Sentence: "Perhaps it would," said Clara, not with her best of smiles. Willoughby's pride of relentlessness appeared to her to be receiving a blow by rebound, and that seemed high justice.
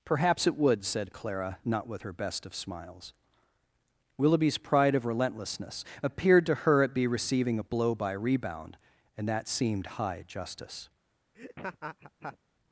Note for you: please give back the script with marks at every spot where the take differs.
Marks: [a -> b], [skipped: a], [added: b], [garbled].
"Perhaps it would," said Clara, not with her best of smiles. Willoughby's pride of relentlessness appeared to her [to -> at] be receiving a blow by rebound, and that seemed high justice.